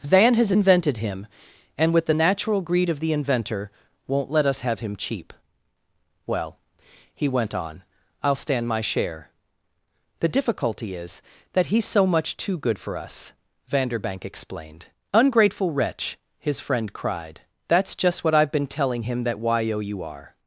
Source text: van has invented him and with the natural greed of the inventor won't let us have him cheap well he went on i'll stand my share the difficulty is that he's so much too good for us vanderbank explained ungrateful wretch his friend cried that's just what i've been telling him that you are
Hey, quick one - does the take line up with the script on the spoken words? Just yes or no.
yes